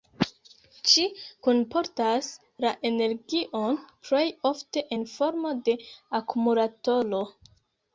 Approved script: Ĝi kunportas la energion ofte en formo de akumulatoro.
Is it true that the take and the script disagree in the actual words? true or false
true